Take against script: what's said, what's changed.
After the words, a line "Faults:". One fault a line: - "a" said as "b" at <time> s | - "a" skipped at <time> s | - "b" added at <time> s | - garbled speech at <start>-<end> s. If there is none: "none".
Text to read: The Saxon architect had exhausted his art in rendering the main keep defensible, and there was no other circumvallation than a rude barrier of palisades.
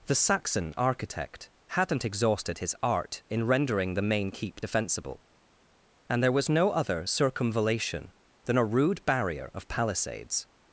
The Saxon architect hadn't exhausted his art in rendering the main keep defensible, and there was no other circumvallation than a rude barrier of palisades.
Faults:
- "had" said as "hadn't" at 1.7 s